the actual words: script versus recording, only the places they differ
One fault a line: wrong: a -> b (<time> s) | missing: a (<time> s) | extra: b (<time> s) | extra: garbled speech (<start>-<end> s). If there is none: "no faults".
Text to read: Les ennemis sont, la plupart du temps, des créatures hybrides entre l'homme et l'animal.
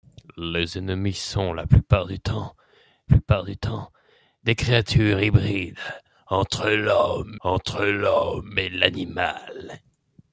extra: plupart du temps (3.1 s)
extra: entre l'homme (7.4 s)